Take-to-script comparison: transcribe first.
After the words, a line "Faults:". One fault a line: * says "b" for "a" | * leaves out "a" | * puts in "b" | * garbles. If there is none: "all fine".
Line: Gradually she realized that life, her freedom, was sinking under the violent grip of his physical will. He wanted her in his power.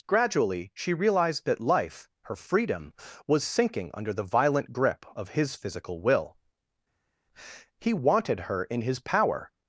Gradually she realized that life, her freedom, was sinking under the violent grip of his physical will. He wanted her in his power.
Faults:
all fine